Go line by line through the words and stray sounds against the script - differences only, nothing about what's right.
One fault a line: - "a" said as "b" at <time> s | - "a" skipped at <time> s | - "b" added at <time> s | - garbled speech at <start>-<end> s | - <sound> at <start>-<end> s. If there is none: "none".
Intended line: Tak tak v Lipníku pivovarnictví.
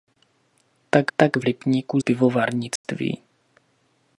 - dropout at 2.8-2.8 s